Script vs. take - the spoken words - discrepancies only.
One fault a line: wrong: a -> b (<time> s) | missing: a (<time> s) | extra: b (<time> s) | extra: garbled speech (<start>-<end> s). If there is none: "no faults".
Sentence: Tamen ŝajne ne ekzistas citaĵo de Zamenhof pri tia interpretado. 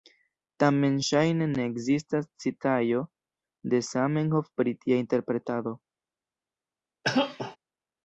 no faults